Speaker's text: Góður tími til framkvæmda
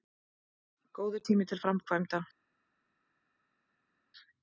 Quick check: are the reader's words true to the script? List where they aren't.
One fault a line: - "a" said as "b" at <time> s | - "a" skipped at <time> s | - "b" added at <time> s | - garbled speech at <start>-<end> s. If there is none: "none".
none